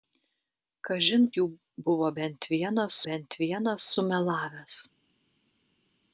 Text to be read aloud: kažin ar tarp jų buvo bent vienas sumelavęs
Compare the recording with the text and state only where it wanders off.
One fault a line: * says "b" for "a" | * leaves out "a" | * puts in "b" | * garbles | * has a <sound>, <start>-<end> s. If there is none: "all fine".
* says "jų buvo bent vienas" for "ar tarp jų buvo"